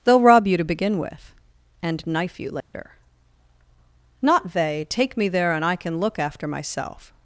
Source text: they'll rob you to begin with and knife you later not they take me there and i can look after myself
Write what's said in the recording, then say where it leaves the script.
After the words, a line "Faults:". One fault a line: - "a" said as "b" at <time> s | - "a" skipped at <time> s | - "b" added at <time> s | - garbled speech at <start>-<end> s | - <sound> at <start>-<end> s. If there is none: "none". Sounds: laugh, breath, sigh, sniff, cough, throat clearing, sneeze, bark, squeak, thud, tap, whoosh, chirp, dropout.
they'll rob you to begin with and knife you later not they take me there and i can look after myself
Faults:
- dropout at 2.6-2.7 s